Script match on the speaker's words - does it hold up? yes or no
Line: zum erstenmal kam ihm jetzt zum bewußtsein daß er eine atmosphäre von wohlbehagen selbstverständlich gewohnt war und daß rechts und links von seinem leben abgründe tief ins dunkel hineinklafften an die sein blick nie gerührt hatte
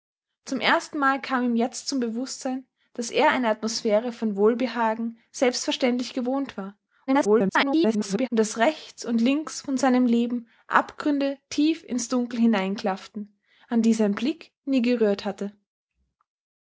no